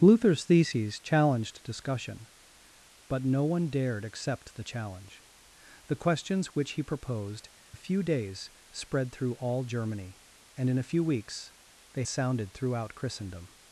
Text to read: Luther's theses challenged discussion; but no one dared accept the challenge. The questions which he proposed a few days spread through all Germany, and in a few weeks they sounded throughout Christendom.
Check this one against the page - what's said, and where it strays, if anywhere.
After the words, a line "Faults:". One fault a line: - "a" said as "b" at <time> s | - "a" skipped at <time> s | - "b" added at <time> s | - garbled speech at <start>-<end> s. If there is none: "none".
Luther's theses challenged discussion; but no one dared accept the challenge. The questions which he proposed a few days spread through all Germany, and in a few weeks they sounded throughout Christendom.
Faults:
none